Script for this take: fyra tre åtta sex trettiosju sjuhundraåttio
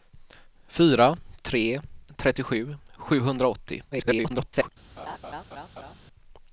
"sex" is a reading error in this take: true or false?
true